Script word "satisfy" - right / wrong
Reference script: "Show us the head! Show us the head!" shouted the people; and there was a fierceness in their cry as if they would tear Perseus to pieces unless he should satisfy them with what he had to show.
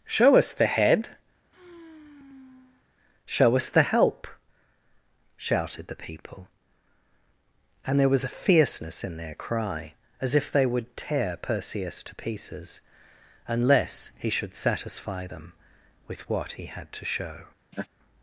right